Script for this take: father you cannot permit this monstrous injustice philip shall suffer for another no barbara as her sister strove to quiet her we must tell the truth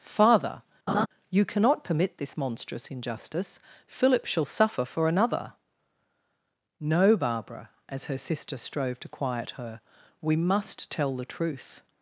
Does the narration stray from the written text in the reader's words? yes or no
no